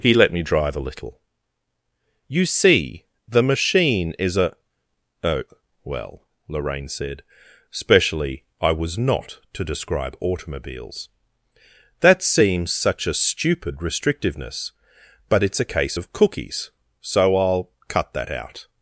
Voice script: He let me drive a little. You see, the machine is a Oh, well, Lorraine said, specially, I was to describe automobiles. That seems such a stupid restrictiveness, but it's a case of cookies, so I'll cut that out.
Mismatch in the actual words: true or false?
true